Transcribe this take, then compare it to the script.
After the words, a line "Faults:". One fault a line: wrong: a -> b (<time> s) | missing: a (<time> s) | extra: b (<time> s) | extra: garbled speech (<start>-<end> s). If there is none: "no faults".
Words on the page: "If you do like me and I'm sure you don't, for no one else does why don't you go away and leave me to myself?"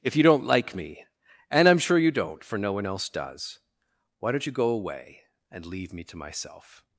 "If you don't like me and I'm sure you don't, for no one else does why don't you go away and leave me to myself?"
Faults:
wrong: do -> don't (0.2 s)